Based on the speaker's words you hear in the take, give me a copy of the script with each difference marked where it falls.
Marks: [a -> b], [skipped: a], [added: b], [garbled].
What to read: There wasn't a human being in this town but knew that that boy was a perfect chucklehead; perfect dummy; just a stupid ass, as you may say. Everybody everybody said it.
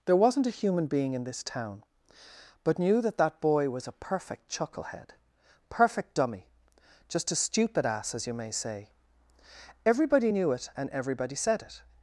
There wasn't a human being in this town but knew that that boy was a perfect chucklehead; perfect dummy; just a stupid ass, as you may say. Everybody [added: knew it and] everybody said it.